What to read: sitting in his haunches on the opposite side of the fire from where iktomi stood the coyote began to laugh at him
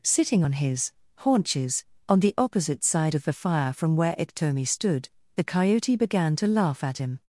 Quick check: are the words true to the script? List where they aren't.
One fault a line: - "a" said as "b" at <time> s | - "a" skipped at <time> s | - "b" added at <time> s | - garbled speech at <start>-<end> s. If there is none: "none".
- "in" said as "on" at 0.4 s